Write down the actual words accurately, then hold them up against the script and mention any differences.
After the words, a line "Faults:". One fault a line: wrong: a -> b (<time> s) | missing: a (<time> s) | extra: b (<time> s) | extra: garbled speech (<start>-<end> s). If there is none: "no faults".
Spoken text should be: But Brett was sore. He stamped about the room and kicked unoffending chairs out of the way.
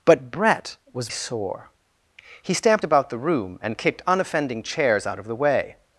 But Brett was sore. He stamped about the room and kicked unoffending chairs out of the way.
Faults:
no faults